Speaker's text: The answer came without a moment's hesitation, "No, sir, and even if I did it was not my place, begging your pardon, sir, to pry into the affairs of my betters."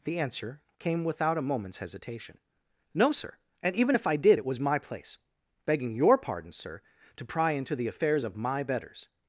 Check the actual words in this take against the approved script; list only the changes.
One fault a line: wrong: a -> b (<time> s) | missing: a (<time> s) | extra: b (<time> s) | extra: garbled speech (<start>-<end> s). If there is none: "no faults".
missing: not (4.6 s)